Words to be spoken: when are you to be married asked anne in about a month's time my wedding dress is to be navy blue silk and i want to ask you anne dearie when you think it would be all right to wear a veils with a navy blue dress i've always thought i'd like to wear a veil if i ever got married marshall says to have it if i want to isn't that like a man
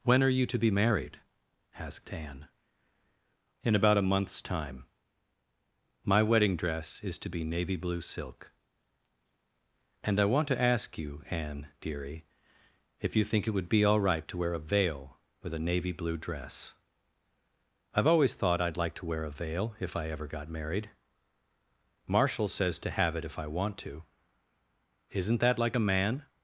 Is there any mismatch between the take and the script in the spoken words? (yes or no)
yes